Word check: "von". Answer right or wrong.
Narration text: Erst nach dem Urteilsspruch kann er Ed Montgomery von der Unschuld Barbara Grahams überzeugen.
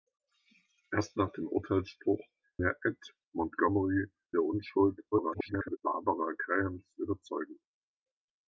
wrong